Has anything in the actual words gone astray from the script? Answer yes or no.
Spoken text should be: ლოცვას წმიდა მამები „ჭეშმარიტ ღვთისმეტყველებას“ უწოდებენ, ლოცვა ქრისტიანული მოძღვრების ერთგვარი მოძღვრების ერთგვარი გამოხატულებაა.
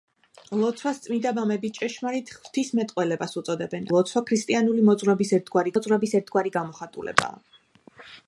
no